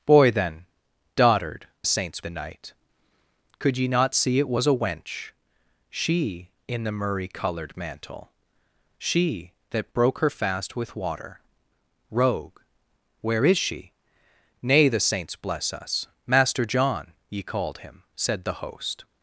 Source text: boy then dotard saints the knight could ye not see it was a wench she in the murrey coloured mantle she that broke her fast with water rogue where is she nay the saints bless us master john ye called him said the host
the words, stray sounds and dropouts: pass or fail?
pass